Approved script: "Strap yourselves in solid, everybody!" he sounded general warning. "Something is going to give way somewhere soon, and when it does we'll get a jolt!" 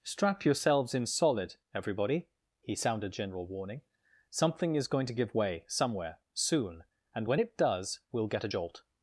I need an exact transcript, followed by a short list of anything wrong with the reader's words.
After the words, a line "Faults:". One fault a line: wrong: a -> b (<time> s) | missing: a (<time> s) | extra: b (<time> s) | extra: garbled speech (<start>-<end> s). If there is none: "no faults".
"Strap yourselves in solid, everybody!" he sounded general warning. "Something is going to give way somewhere soon, and when it does we'll get a jolt!"
Faults:
no faults